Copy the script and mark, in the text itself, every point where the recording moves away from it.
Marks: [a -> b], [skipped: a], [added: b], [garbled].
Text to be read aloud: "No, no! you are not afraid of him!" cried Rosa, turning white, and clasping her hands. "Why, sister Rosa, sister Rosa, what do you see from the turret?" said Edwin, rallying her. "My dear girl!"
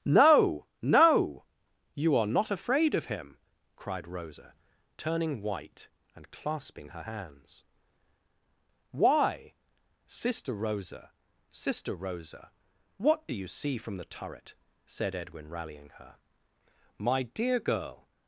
"No, no! you are not afraid of him!" cried Rosa, turning white, and clasping her hands. "Why, sister Rosa, sister Rosa, what do you see from the turret?" said Edwin, rallying her. "My dear girl!"